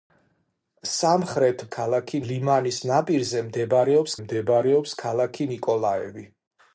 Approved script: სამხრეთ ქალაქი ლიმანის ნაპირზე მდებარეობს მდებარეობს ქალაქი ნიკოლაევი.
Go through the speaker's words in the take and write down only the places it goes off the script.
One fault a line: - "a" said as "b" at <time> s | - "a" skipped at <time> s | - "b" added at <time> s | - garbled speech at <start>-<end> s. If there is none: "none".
none